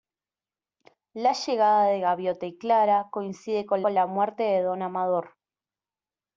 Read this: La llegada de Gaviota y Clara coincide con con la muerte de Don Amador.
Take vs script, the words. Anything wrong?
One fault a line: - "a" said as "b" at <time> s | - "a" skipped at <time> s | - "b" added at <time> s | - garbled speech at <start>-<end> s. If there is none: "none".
none